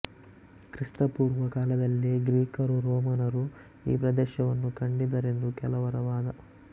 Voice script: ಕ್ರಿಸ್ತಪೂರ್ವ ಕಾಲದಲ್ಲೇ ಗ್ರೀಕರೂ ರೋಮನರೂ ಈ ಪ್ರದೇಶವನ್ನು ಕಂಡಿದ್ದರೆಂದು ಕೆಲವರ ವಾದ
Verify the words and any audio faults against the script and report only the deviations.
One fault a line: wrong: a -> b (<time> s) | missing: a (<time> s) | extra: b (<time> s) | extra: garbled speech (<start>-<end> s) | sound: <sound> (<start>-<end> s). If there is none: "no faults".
no faults